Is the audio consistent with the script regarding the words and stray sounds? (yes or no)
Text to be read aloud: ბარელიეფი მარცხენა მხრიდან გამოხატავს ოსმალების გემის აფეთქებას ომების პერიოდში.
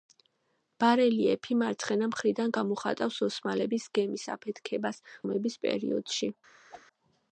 no